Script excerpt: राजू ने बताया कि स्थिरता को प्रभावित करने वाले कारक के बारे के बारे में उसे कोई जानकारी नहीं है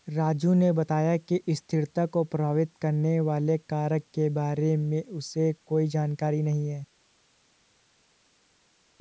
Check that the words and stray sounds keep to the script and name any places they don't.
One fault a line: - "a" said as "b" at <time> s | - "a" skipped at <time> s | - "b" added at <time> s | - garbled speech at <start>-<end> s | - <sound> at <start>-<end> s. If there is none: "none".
- "के बारे" skipped at 4.8 s